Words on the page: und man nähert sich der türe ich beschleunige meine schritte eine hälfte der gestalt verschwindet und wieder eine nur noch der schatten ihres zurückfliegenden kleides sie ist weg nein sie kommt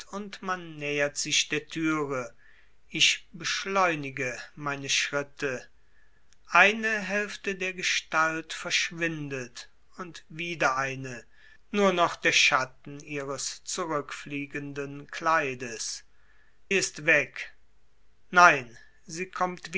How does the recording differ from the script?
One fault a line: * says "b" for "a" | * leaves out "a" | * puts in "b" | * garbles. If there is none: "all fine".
* leaves out "sie"